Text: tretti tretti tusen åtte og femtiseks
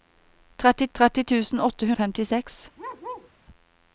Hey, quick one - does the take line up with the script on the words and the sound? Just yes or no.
no